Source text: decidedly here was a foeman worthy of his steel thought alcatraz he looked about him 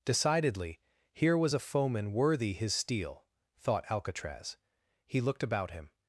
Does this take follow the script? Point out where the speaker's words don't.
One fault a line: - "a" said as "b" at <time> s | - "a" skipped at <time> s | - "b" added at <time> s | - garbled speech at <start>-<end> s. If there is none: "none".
- "of" skipped at 2.5 s